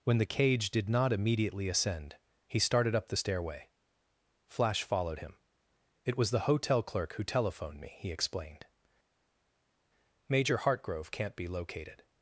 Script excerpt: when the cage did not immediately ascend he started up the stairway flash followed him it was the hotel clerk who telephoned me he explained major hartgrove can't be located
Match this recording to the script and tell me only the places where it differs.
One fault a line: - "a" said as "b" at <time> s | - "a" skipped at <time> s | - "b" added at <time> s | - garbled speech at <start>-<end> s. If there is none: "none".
none